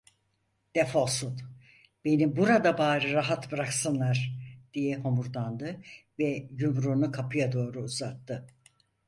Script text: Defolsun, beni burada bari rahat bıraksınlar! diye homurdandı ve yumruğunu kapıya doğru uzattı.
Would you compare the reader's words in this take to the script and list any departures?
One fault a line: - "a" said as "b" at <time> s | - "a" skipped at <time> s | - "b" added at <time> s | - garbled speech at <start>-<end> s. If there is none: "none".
none